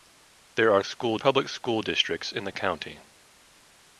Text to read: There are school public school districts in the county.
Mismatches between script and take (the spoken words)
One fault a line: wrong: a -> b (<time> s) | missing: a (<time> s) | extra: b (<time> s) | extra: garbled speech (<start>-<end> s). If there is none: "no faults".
no faults